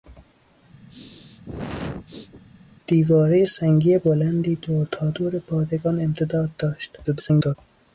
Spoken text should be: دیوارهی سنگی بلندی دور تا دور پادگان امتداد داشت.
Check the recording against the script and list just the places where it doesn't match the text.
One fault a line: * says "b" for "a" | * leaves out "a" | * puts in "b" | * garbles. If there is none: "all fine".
* garbles